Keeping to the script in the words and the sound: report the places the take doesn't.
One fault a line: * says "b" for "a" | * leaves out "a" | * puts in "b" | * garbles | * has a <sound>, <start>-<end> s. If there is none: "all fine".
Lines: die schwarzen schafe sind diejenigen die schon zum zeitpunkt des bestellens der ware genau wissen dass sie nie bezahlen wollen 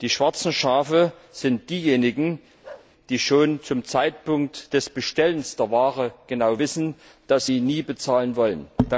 * has a bark, 2.6-2.9 s